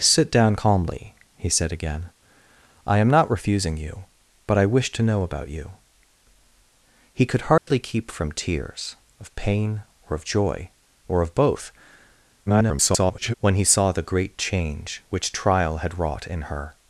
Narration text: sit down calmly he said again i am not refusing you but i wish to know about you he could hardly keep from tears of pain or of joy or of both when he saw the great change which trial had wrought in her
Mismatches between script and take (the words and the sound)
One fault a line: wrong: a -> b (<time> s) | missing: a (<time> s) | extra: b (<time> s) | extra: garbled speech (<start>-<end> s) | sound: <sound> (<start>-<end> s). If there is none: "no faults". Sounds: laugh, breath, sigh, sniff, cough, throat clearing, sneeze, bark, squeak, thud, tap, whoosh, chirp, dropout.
sound: dropout (7.6-7.7 s)
extra: garbled speech (12.5-13.3 s)